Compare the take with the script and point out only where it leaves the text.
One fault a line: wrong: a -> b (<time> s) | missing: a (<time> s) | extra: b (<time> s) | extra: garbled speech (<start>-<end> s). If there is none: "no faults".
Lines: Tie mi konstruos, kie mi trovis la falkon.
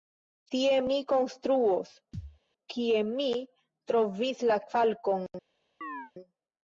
no faults